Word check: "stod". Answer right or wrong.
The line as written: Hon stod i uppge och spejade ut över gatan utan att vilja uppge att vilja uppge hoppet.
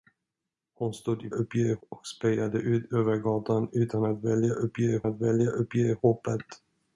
right